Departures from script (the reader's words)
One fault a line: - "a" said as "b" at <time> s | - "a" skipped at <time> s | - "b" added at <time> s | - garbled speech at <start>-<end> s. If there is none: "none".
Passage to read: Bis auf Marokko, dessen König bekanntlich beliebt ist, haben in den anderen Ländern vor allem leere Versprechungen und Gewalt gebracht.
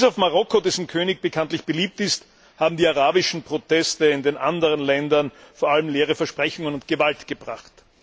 - "die arabischen Proteste" added at 2.8 s